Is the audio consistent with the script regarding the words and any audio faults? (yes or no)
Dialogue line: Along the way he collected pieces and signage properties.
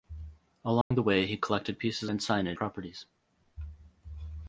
no